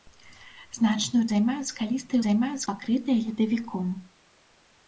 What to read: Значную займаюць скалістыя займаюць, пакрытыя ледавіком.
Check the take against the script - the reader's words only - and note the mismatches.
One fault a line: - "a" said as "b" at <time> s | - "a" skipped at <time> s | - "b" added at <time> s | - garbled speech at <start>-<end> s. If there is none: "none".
none